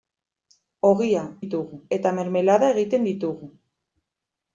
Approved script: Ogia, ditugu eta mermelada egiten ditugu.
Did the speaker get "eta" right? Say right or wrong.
right